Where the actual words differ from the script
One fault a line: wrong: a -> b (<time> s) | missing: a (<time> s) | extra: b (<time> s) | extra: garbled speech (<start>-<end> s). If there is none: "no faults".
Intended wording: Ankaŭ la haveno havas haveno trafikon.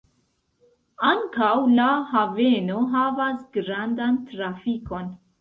wrong: haveno -> grandan (3.6 s)